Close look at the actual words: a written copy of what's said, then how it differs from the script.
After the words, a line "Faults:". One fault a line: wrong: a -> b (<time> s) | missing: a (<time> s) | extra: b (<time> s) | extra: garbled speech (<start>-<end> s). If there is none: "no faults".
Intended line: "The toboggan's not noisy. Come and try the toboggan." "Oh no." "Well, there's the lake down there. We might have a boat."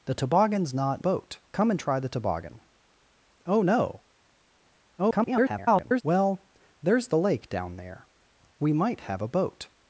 "The toboggan's not boat. Come and try the toboggan." "Oh no." [garbled] "Well, there's the lake down there. We might have a boat."
Faults:
wrong: noisy -> boat (1.0 s)
extra: garbled speech (5.0-6.0 s)